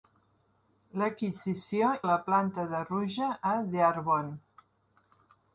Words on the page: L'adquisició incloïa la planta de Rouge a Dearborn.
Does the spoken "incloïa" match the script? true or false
false